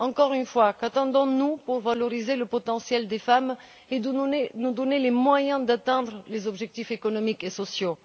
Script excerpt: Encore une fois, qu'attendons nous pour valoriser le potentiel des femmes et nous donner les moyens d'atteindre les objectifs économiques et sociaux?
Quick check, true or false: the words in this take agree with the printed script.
true